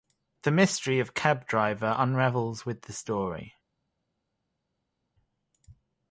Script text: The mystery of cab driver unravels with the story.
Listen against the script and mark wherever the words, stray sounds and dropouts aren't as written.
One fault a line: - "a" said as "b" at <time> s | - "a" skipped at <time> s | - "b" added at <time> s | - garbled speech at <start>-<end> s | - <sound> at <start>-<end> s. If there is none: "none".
none